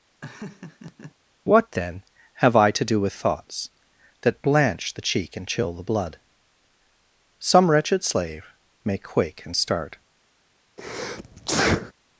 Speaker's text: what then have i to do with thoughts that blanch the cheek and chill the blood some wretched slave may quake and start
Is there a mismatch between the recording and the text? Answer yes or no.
no